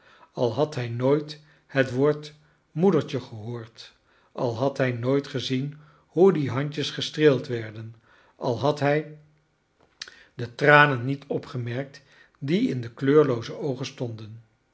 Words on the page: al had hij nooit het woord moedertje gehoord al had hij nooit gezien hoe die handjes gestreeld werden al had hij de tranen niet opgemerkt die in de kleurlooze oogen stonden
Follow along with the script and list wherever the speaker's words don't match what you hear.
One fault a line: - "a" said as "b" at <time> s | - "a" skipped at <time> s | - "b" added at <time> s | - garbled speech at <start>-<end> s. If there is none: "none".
none